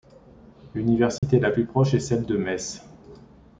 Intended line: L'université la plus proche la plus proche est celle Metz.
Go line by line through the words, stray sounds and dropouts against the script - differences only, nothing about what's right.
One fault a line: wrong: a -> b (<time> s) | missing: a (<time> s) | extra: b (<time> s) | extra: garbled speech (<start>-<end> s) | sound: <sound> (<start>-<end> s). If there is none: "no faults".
sound: dropout (1.2-1.2 s)
missing: la plus proche (1.9 s)
extra: de (2.2 s)